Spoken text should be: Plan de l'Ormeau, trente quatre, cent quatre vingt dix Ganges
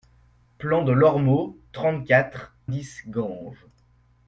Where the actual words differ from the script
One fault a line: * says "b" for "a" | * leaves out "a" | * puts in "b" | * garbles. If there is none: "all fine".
* leaves out "cent quatre vingt"